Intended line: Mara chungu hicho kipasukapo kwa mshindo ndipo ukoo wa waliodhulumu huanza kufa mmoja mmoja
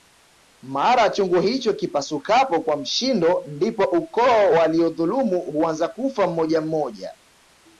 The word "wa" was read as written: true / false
false